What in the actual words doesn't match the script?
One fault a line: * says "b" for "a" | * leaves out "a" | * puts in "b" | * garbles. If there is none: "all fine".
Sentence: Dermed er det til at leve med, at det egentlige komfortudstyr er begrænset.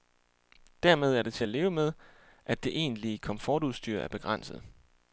all fine